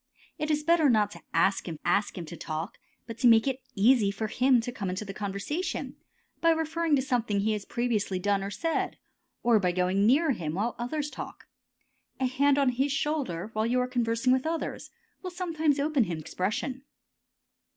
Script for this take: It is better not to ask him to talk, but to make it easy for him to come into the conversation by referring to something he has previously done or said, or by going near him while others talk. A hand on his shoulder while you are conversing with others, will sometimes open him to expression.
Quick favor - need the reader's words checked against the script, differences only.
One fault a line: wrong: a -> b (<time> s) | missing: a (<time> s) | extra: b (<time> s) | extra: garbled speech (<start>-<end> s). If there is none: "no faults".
extra: ask him (1.8 s)
missing: to (16.2 s)